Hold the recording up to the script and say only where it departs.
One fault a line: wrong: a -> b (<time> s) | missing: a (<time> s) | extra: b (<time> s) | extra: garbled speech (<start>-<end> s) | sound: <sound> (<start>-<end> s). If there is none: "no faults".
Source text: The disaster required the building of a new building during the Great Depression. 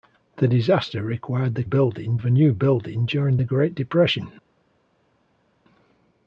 no faults